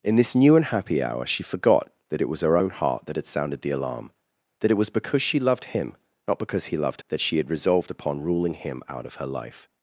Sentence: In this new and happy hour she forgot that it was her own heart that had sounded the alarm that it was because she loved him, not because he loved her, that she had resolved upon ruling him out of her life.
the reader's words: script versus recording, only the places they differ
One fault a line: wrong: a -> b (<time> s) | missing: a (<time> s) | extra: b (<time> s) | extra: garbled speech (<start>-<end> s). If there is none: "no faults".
missing: her (7.0 s)